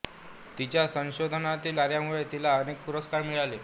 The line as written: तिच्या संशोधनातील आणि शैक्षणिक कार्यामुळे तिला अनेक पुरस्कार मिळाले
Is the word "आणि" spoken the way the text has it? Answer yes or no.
no